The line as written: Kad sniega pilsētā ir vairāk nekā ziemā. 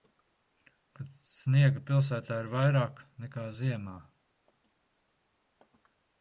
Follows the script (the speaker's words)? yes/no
yes